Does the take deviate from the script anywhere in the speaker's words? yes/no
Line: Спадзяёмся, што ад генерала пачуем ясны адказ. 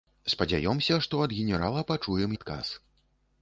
yes